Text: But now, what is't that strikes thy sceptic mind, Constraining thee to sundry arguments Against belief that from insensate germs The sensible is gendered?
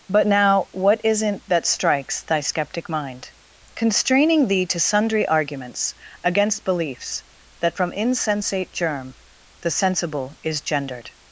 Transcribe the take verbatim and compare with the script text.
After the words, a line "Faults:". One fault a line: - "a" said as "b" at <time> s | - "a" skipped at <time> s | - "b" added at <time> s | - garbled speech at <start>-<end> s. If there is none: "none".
But now, what is't that strikes thy sceptic mind, Constraining thee to sundry arguments Against beliefs that from insensate germ The sensible is gendered?
Faults:
- "belief" said as "beliefs" at 6.6 s
- "germs" said as "germ" at 8.7 s